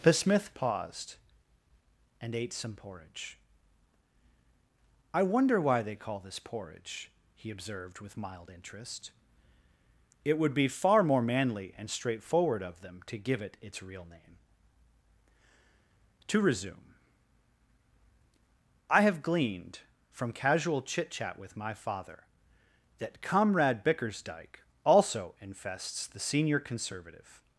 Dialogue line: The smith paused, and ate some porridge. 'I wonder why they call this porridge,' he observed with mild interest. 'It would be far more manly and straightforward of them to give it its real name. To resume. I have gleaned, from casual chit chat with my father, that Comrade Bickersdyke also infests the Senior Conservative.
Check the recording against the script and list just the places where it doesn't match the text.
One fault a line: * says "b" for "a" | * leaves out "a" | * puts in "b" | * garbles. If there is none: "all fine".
all fine